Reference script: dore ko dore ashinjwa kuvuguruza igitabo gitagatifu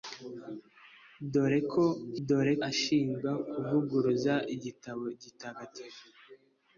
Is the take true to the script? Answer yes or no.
yes